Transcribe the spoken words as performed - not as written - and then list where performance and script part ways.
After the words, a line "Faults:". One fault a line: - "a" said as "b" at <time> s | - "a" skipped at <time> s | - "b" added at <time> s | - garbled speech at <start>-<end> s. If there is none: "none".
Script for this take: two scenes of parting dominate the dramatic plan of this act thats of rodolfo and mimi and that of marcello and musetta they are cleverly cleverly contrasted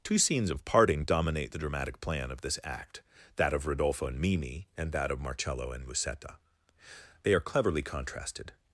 two scenes of parting dominate the dramatic plan of this act that of rodolfo and mimi and that of marcello and musetta they are cleverly contrasted
Faults:
- "thats" said as "that" at 3.3 s
- "cleverly" skipped at 7.8 s